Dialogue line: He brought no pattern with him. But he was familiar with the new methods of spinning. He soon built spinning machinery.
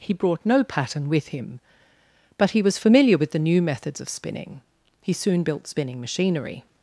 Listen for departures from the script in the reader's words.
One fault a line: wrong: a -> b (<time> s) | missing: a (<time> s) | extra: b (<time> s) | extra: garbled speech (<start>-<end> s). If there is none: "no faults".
no faults